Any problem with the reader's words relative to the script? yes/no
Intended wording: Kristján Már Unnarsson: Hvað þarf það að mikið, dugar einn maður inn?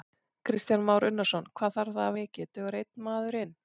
no